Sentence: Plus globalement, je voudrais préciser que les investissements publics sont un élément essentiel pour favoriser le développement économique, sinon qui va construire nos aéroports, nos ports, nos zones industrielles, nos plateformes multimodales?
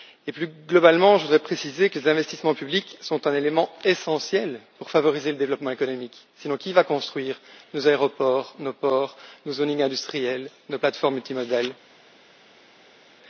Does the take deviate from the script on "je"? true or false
false